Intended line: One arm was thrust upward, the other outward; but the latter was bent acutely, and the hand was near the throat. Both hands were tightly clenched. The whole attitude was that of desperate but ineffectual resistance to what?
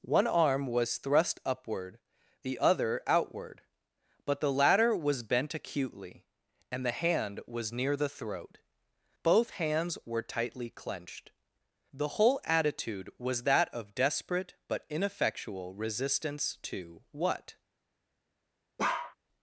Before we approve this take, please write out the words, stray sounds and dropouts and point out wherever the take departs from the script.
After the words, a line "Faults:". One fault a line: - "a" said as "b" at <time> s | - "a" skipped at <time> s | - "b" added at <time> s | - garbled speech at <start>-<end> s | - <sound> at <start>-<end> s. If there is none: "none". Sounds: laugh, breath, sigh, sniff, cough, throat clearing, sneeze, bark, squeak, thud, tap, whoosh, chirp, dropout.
One arm was thrust upward, the other outward; but the latter was bent acutely, and the hand was near the throat. Both hands were tightly clenched. The whole attitude was that of desperate but ineffectual resistance to what?
Faults:
- bark at 18.8-19.2 s